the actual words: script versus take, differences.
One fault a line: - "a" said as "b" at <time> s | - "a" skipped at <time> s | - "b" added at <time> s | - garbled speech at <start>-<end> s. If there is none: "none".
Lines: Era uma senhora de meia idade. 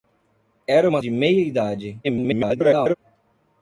- "senhora" skipped at 1.0 s
- garbled speech at 2.0-2.9 s